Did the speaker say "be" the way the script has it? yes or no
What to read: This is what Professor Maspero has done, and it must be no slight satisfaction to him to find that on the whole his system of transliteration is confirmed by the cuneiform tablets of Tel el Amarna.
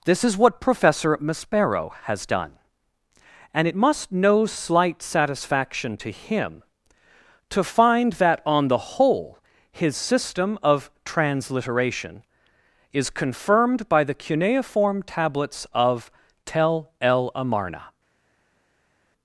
no